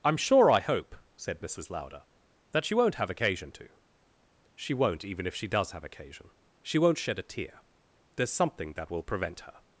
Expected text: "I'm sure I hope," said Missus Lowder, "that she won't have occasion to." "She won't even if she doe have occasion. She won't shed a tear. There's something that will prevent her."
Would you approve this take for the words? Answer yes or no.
no